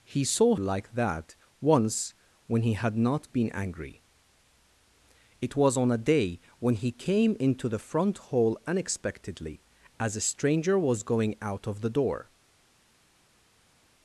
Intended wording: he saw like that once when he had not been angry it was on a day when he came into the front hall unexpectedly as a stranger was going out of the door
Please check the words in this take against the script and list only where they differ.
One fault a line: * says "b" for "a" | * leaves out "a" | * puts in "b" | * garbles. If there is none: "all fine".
all fine